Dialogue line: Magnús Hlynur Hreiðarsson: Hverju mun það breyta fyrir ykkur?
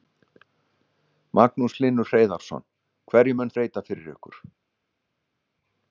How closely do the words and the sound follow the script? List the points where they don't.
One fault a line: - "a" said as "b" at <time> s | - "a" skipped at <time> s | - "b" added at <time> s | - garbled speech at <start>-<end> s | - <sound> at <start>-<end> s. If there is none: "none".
- "það" skipped at 3.5 s